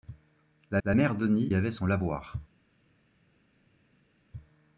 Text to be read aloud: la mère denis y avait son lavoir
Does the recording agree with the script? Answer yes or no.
no